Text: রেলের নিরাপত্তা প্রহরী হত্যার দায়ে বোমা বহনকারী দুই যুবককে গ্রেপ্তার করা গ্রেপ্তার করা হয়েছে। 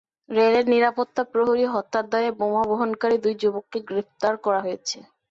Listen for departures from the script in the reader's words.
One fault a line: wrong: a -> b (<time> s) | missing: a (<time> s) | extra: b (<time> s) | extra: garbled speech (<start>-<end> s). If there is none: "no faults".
missing: গ্রেপ্তার করা (4.6 s)